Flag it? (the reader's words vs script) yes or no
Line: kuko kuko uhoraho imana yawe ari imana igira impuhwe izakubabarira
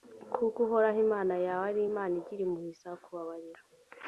yes